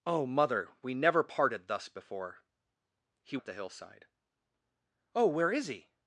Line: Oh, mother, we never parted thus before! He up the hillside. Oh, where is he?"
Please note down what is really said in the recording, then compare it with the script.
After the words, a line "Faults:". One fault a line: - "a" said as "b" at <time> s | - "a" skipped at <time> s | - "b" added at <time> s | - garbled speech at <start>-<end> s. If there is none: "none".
Oh, mother, we never parted thus before! He up the hillside. Oh, where is he?"
Faults:
none